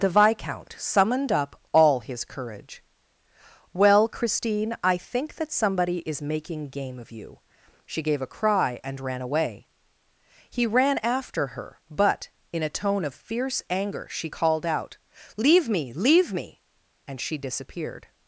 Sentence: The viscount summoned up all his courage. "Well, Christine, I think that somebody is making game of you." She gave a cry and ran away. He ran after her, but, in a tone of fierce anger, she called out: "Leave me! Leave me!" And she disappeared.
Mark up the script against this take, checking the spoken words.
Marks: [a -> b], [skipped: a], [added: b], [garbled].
The viscount summoned up all his courage. "Well, Christine, I think that somebody is making game of you." She gave a cry and ran away. He ran after her, but, in a tone of fierce anger, she called out: "Leave me! Leave me!" And she disappeared.